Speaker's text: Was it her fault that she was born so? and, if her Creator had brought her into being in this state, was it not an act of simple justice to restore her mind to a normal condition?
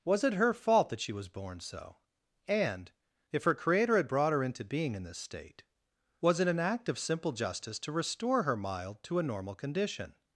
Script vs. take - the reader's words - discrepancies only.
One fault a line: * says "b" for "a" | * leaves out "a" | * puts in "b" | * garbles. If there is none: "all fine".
* leaves out "not"
* says "mild" for "mind"